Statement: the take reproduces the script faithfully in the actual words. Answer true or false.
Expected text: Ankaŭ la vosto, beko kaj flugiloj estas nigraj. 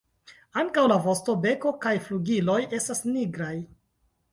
true